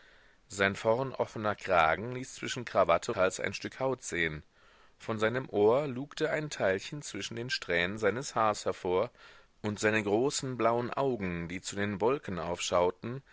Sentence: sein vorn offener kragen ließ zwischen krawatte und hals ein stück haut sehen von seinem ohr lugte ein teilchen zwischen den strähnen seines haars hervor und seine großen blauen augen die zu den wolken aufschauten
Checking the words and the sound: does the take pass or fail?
fail